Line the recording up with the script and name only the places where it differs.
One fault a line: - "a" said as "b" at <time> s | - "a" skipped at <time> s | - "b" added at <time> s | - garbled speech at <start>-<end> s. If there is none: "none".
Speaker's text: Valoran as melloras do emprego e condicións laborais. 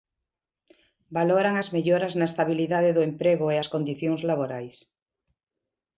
- "na estabilidade" added at 2.2 s
- "as" added at 3.6 s